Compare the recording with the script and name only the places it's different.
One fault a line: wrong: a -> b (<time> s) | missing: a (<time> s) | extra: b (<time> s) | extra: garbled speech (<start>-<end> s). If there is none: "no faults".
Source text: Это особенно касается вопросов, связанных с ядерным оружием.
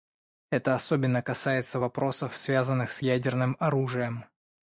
no faults